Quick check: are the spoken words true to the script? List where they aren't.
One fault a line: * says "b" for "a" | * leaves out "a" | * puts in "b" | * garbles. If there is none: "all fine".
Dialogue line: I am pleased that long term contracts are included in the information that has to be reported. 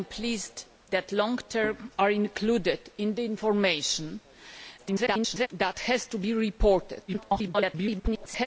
* leaves out "contracts"
* garbles
* garbles